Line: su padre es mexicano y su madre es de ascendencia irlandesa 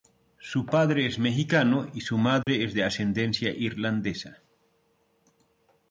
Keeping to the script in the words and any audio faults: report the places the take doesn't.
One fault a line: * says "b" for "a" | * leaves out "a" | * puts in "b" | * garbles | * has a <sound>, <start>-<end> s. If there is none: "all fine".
* has a dropout, 2.4-2.5 s